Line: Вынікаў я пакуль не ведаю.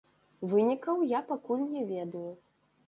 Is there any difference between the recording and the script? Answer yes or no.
no